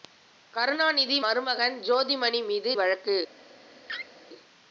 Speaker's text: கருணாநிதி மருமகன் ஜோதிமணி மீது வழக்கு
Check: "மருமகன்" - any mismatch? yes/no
no